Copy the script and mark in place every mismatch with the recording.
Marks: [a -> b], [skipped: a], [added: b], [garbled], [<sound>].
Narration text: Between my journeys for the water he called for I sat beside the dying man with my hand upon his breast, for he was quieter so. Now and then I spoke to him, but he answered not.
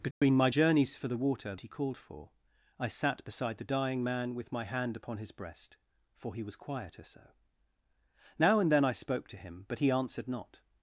Between [dropout] my journeys for the water he called for I sat beside the dying man with my hand upon his breast, for he was quieter so. Now and then I spoke to him, but he answered not.